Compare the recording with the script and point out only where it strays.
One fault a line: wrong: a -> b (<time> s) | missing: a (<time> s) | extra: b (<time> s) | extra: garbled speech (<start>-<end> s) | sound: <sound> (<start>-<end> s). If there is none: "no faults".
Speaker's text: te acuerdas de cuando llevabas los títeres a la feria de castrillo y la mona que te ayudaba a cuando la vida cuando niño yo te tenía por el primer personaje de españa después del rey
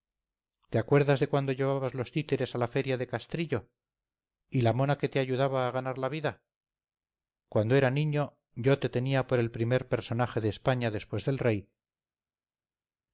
wrong: cuando -> ganar (5.7 s)
extra: era (7.7 s)